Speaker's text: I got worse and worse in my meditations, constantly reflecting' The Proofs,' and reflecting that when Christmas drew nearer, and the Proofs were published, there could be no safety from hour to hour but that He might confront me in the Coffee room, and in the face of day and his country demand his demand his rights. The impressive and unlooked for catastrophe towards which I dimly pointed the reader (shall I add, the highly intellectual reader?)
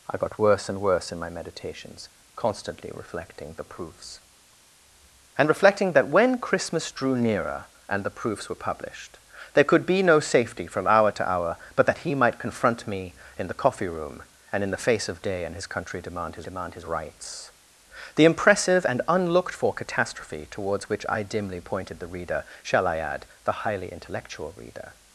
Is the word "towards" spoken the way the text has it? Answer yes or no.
yes